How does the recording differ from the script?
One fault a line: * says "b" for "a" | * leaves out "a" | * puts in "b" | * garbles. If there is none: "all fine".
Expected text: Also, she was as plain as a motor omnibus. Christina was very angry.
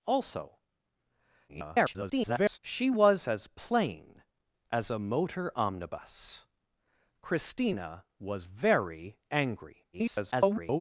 * garbles
* garbles